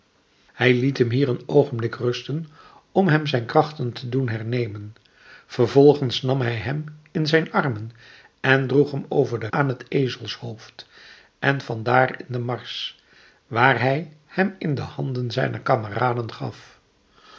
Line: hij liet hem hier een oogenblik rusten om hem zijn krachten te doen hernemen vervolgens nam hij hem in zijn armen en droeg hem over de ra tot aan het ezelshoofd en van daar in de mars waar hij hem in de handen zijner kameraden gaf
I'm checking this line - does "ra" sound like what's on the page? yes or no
no